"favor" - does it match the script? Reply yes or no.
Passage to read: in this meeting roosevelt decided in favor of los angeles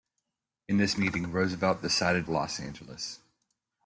no